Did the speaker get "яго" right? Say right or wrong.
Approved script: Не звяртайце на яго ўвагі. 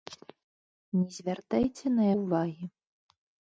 wrong